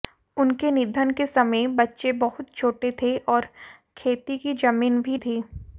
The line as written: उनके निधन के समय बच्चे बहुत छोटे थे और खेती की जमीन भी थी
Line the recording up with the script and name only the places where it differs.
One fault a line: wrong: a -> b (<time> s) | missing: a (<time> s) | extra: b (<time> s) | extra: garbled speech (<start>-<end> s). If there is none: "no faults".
no faults